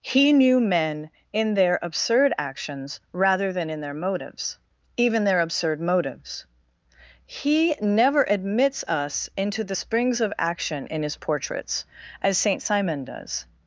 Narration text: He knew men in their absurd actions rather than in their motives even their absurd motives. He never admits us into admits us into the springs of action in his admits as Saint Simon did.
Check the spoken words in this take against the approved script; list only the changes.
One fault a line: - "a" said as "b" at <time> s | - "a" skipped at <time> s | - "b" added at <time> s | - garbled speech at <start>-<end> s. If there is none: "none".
- "admits us into" skipped at 9.6 s
- "admits" said as "portraits" at 11.2 s
- "did" said as "does" at 13.0 s